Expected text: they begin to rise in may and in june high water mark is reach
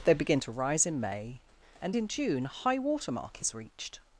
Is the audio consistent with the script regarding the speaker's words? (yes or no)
no